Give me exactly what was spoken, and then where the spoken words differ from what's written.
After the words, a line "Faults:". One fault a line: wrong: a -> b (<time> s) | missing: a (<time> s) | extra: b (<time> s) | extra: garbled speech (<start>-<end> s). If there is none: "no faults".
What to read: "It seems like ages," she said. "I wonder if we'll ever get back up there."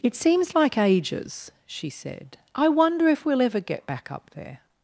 "It seems like ages," she said. "I wonder if we'll ever get back up there."
Faults:
no faults